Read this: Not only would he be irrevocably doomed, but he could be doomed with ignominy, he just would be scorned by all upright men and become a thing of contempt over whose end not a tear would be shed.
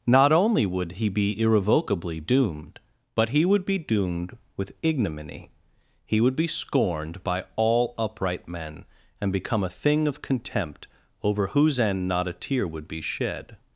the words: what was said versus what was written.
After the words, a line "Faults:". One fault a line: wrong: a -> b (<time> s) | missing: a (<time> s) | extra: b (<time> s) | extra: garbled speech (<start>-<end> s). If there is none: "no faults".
Not only would he be irrevocably doomed, but he would be doomed with ignominy, he would be scorned by all upright men and become a thing of contempt over whose end not a tear would be shed.
Faults:
wrong: could -> would (3.5 s)
missing: just (6.2 s)